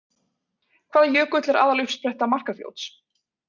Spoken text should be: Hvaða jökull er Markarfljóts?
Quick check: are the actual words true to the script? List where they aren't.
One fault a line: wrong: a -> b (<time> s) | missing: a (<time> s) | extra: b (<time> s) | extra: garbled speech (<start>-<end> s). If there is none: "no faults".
extra: aðaluppspretta (1.6 s)